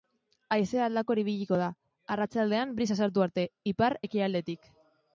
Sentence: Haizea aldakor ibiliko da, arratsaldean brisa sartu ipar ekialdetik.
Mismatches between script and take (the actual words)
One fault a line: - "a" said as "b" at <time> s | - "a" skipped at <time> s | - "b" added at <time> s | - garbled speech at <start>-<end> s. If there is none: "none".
- "arte" added at 3.3 s